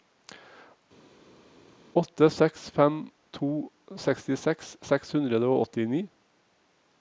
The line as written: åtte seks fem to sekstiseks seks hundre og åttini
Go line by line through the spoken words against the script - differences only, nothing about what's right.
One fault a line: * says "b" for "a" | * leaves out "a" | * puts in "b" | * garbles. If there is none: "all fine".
all fine